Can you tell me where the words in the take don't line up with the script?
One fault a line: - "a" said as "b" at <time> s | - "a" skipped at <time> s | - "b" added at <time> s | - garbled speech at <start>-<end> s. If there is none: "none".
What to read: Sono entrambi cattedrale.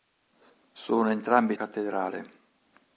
none